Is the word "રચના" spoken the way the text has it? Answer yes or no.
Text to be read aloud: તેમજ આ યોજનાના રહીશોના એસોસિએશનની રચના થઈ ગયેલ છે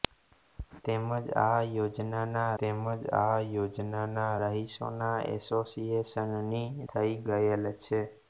no